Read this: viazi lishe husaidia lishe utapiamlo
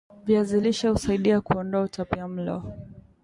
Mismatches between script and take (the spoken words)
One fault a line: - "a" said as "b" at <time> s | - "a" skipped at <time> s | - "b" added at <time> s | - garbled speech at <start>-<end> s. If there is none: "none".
- "lishe" said as "kuondoa" at 1.4 s